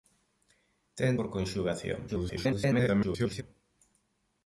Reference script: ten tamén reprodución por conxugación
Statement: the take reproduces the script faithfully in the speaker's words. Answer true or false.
false